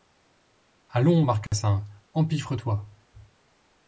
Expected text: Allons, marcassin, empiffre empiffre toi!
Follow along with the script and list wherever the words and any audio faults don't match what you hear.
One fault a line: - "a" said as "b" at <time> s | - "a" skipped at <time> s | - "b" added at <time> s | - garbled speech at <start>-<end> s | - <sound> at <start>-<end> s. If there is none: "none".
- dropout at 1.5-1.5 s
- "empiffre" skipped at 2.5 s